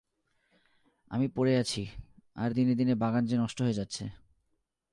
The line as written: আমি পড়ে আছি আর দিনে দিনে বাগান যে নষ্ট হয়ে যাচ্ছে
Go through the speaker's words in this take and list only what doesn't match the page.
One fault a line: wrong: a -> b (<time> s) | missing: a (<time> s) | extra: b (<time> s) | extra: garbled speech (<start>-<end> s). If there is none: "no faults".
no faults